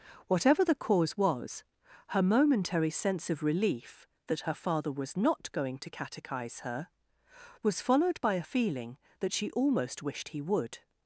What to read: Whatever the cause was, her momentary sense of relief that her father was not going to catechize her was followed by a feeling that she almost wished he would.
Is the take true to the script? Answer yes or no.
yes